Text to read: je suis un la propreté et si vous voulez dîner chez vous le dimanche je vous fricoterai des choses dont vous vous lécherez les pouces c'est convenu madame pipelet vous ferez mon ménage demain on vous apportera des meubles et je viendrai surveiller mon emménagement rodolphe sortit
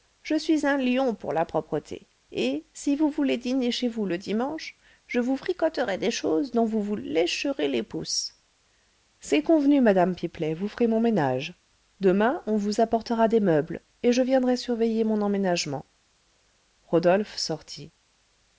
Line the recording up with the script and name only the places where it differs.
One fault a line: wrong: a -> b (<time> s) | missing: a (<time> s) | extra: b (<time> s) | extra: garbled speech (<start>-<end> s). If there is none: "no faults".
extra: lion pour (0.8 s)